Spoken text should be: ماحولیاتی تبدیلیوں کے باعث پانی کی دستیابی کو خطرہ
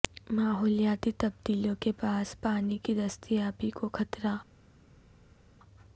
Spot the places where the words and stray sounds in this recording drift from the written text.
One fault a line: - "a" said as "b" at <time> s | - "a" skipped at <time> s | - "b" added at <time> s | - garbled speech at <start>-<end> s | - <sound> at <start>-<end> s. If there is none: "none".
none